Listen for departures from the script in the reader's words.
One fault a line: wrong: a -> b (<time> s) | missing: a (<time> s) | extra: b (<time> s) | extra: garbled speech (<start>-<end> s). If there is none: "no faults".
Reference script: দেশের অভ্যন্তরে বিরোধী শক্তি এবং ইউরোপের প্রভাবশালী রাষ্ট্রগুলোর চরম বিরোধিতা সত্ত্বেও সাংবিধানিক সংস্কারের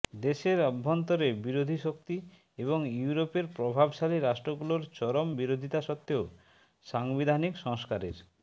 no faults